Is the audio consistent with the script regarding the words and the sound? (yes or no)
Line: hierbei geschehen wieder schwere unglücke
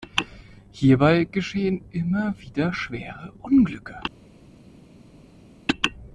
no